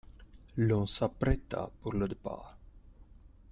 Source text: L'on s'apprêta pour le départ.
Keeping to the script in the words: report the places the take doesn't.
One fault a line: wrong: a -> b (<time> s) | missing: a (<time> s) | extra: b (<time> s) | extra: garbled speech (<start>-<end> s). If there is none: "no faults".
no faults